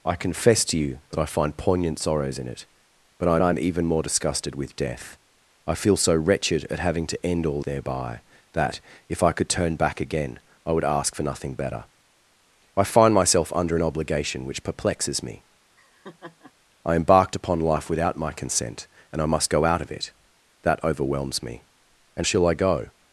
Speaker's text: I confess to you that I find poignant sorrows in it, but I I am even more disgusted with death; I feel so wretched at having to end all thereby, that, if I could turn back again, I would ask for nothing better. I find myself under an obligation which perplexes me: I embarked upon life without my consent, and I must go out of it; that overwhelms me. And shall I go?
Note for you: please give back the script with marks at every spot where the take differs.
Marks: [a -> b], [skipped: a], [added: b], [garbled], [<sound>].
I confess to you that I find poignant sorrows in it, but I I am even more disgusted with death; I feel so wretched at having to end all thereby, that, if I could turn back again, I would ask for nothing better. I find myself under an obligation which perplexes me: [laugh] I embarked upon life without my consent, and I must go out of it; that overwhelms me. And shall I go?